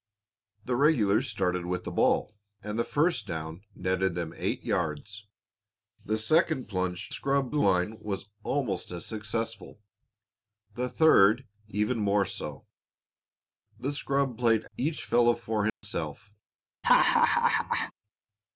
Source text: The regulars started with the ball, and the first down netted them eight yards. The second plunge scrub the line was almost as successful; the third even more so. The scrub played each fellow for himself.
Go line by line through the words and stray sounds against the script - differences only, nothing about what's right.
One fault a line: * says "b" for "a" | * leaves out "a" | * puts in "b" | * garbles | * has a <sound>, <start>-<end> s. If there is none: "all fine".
* has a dropout, 15.7-15.8 s
* has a laugh, 16.8-17.9 s